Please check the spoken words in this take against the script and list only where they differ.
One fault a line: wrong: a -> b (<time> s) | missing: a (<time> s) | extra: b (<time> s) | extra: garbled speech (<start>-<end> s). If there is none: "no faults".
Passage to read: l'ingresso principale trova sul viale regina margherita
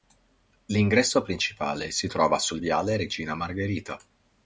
extra: si (1.9 s)